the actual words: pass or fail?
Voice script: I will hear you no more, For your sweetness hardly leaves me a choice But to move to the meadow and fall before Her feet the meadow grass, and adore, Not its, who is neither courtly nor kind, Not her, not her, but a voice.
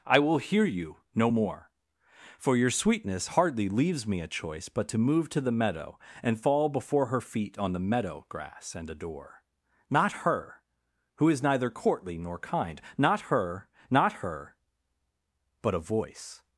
fail